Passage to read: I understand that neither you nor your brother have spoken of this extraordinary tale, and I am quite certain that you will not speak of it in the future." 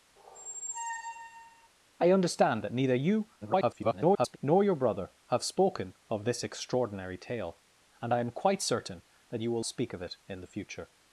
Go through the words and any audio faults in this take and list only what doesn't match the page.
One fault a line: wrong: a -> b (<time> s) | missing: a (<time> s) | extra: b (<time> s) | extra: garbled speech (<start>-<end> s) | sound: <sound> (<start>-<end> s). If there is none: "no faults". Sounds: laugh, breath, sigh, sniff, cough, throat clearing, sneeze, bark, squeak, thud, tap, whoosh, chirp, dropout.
sound: squeak (0.2-1.7 s)
extra: garbled speech (3.4-4.4 s)
missing: not (9.6 s)